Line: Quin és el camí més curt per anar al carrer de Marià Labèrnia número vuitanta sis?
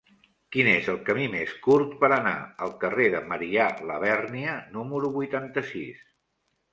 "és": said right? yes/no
yes